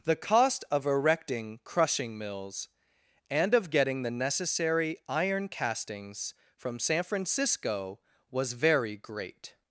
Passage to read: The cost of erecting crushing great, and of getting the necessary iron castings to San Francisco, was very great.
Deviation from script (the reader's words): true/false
true